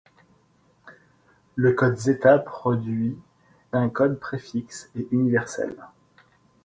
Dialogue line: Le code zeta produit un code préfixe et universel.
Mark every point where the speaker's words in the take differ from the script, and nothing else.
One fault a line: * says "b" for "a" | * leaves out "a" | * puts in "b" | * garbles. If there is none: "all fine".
all fine